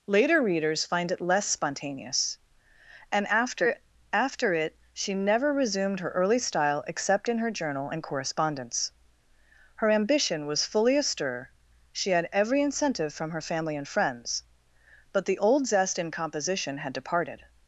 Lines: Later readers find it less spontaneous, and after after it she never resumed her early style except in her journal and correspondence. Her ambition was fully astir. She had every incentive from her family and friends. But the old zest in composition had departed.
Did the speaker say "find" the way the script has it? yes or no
yes